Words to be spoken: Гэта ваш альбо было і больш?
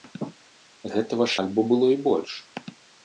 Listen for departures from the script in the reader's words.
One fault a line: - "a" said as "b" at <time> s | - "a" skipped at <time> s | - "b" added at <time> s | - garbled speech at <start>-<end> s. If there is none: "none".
none